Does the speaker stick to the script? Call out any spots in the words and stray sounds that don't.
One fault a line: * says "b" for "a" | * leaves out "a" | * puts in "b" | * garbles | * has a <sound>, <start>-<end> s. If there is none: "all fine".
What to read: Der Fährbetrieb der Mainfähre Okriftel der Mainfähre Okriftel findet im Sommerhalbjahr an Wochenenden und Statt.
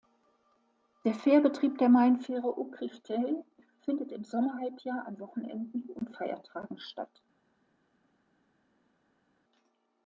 * leaves out "der Mainfähre Okriftel"
* puts in "Feiertagen"